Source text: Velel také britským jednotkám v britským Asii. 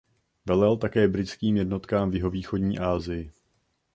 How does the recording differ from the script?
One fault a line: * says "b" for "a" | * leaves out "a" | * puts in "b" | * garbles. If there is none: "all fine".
* says "jihovýchodní" for "britským"